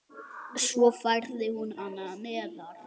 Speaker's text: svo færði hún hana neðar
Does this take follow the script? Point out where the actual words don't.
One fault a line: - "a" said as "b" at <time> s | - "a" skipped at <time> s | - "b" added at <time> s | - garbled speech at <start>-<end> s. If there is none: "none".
none